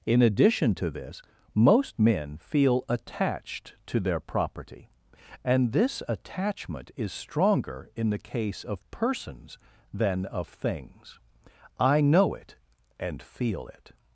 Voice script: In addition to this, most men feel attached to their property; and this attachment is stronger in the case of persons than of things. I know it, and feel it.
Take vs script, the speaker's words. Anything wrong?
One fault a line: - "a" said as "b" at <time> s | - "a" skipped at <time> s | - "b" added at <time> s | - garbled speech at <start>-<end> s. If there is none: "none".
none